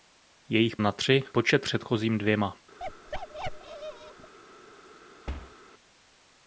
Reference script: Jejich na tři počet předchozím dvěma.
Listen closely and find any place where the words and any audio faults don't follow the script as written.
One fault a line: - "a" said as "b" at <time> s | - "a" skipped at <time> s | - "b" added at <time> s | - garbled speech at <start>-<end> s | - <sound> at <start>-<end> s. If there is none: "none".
- bark at 2.8-4.3 s
- thud at 5.3-5.6 s